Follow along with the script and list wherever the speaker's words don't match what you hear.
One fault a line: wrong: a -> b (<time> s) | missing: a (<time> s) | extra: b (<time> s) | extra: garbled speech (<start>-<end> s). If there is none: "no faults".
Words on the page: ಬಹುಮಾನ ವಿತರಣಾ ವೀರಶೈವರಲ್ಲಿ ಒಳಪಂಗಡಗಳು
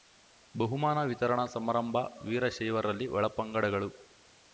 extra: ಸಮಾರಂಭ (1.4 s)